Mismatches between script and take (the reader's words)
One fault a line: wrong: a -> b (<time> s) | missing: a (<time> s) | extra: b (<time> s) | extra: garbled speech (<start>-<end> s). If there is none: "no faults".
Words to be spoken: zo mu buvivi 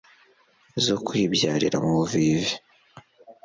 extra: kwibyarira (1.1 s)